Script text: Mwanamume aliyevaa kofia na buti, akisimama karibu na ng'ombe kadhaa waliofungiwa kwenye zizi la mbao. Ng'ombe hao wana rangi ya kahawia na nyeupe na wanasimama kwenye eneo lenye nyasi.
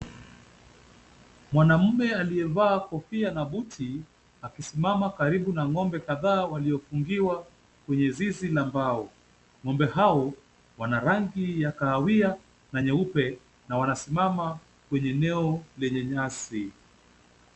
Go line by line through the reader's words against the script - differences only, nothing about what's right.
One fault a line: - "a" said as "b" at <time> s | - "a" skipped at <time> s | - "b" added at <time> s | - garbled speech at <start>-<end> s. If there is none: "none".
none